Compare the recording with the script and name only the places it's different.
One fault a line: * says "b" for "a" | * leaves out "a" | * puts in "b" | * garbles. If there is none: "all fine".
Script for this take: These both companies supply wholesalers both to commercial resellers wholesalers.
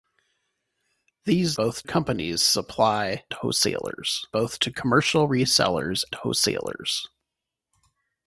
all fine